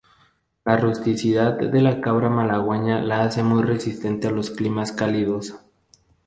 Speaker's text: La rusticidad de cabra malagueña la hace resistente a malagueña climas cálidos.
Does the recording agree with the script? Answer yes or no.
no